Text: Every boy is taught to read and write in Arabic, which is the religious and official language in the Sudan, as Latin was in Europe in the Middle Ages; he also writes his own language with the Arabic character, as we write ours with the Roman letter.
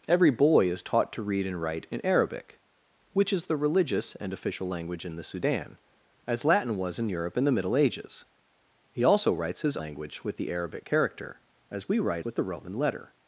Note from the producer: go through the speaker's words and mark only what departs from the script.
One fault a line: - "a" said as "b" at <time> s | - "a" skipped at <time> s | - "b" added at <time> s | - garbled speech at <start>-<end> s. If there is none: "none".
- "own" skipped at 9.8 s
- "ours" skipped at 12.3 s